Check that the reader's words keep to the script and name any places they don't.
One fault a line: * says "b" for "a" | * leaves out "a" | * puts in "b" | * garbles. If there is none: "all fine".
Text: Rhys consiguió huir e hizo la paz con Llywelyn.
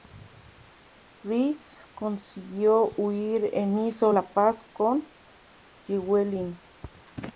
all fine